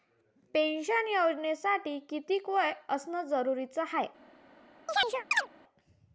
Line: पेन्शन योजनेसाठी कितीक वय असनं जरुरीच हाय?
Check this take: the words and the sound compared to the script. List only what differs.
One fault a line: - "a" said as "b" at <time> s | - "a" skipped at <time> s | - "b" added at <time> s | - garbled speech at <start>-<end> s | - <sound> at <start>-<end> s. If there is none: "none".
- chirp at 4.9-5.5 s